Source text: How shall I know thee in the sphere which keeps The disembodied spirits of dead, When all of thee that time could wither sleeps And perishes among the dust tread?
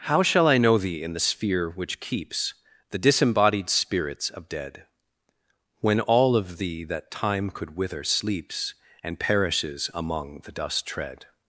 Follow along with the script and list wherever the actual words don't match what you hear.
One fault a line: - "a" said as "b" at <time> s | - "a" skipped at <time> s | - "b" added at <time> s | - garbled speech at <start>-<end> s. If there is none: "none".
none